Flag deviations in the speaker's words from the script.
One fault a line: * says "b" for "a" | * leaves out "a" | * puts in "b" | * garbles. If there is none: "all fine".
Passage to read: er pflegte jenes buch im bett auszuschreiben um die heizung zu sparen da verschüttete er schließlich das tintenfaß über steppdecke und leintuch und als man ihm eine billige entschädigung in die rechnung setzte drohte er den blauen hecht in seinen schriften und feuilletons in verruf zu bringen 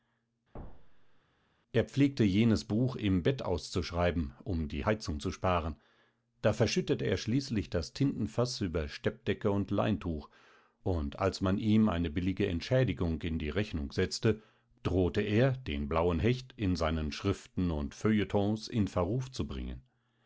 all fine